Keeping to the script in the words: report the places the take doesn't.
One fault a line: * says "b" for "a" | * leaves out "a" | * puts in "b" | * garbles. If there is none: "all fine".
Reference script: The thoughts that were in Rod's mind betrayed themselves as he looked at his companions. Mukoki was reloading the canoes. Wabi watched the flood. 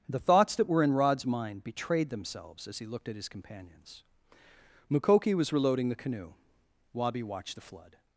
* says "canoe" for "canoes"